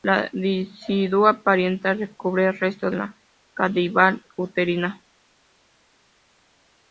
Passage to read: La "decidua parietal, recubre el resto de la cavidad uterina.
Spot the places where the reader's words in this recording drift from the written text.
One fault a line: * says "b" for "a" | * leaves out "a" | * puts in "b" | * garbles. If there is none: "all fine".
* leaves out "de"